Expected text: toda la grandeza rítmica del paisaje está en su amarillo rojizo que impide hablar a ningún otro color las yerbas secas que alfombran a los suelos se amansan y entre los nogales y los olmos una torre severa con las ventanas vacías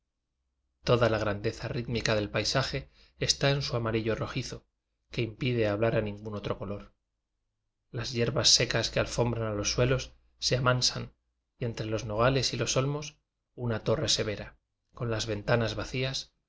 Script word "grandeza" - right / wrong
right